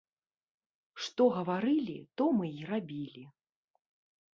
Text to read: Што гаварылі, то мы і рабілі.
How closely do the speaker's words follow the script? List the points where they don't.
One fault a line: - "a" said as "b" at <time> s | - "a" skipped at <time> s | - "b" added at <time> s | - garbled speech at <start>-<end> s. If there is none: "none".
none